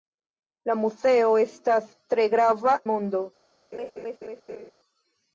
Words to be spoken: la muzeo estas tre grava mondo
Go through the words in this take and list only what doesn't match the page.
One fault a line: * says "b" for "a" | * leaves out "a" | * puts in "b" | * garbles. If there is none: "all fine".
all fine